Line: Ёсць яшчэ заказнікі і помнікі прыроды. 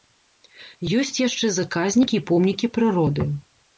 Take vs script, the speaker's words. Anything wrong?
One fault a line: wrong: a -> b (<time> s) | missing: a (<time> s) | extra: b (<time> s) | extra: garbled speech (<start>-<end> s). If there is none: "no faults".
no faults